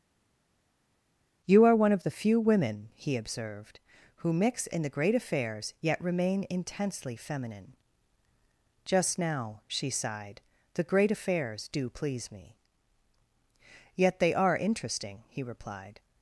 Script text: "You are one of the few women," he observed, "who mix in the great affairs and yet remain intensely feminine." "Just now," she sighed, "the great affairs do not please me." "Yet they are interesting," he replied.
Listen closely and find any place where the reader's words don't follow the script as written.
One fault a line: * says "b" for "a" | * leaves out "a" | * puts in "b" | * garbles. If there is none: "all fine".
* leaves out "and"
* leaves out "not"